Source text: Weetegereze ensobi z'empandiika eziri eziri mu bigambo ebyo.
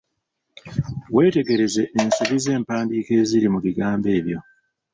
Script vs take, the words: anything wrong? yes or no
yes